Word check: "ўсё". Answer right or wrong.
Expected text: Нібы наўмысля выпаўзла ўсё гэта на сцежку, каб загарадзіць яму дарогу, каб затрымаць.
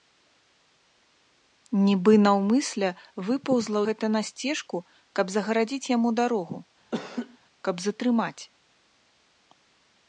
wrong